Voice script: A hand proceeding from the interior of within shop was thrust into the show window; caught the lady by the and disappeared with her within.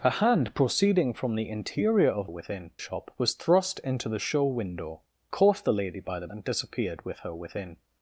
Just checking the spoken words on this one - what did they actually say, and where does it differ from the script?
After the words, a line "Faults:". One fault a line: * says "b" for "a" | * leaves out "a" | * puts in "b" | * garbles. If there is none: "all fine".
A hand proceeding from the interior of within shop was thrust into the show window; caught the lady by the and disappeared with her within.
Faults:
all fine